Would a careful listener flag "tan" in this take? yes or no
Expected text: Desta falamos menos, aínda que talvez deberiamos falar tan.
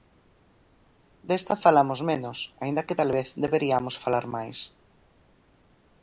yes